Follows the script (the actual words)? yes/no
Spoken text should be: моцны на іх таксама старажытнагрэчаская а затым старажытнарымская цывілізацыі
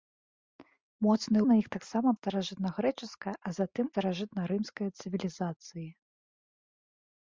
yes